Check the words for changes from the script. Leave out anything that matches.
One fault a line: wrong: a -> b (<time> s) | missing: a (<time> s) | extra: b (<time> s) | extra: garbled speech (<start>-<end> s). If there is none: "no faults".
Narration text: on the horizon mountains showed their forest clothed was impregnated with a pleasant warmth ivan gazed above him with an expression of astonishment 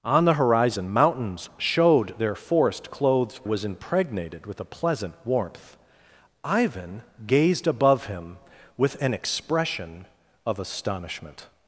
no faults